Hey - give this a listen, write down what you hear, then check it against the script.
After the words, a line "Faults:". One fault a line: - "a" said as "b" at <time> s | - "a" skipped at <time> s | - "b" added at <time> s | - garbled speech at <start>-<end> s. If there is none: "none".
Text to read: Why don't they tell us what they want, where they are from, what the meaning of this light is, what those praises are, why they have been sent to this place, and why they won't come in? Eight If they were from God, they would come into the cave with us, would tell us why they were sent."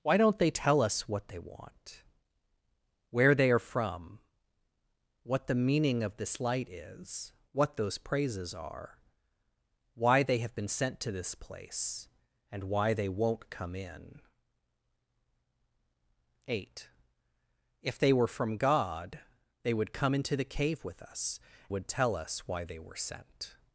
Why don't they tell us what they want, where they are from, what the meaning of this light is, what those praises are, why they have been sent to this place, and why they won't come in? Eight If they were from God, they would come into the cave with us, would tell us why they were sent."
Faults:
none